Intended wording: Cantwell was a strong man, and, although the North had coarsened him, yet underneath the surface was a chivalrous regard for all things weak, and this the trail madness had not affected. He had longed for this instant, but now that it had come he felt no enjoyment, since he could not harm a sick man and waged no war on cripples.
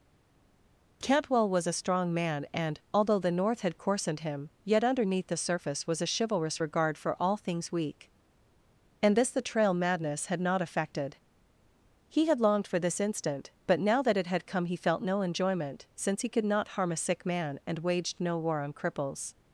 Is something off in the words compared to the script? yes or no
no